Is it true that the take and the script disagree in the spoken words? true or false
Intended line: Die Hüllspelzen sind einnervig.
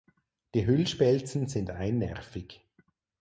false